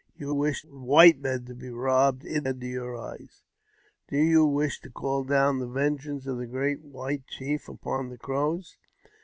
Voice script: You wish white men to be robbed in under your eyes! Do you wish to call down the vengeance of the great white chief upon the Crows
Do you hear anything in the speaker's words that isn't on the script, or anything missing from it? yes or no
no